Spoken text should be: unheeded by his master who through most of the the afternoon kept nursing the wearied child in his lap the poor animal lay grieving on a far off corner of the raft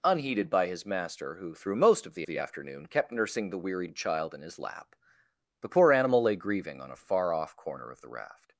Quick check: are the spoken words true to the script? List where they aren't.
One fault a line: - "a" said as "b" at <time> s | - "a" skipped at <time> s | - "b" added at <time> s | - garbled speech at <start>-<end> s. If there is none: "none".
none